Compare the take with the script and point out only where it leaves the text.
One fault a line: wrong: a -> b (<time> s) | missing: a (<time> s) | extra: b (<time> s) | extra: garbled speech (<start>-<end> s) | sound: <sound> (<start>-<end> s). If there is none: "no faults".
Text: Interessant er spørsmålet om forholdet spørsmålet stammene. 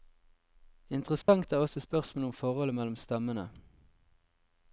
sound: dropout (1.2-1.3 s)
extra: også (1.6 s)
wrong: spørsmålet -> mellom (2.7 s)